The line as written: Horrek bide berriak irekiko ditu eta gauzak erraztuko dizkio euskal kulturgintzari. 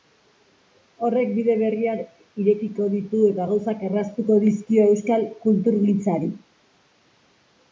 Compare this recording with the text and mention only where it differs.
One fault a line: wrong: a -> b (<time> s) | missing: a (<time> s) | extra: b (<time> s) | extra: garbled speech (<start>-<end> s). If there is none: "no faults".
no faults